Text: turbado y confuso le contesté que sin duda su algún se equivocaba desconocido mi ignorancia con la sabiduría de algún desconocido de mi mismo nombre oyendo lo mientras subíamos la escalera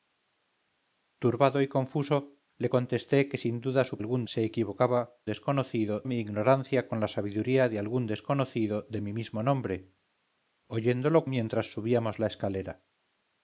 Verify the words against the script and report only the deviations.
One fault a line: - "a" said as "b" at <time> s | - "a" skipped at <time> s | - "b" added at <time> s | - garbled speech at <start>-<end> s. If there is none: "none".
none